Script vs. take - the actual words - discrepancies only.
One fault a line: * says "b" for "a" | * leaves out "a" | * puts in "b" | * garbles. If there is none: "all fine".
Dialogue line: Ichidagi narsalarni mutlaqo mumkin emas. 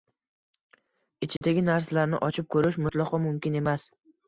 * puts in "ochib ko‘rish"